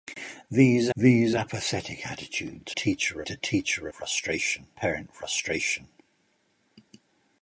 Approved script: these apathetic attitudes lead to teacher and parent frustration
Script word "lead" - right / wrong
wrong